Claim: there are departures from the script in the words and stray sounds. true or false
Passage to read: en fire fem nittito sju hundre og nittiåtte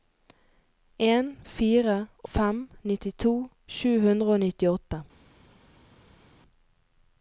false